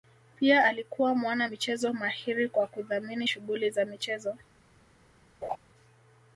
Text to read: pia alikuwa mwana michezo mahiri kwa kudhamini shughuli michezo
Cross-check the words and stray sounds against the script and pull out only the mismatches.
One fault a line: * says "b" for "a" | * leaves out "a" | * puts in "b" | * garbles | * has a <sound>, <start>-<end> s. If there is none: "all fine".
* puts in "za"
* has a laugh, 5.4-5.6 s